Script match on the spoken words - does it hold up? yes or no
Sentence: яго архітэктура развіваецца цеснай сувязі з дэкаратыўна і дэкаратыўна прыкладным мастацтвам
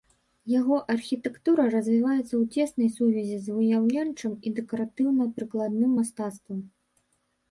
no